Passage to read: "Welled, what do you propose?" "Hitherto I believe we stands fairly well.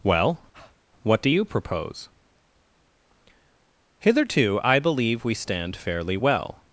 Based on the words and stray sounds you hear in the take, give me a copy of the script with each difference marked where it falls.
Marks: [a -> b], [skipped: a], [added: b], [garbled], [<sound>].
["Welled, -> Well] [breath] what do you propose?" "Hitherto I believe we [stands -> stand] fairly well.